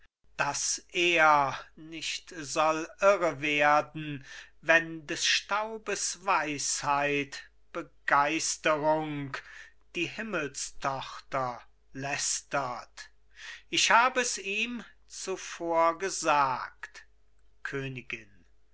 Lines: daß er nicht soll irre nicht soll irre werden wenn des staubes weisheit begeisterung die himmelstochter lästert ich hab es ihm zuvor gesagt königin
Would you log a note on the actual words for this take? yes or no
yes